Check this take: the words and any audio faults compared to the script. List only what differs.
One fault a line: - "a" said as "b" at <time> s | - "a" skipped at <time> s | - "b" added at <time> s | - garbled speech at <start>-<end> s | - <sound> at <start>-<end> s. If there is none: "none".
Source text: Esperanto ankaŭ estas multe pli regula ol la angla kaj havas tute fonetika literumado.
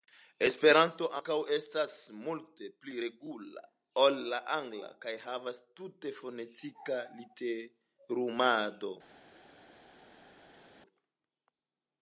none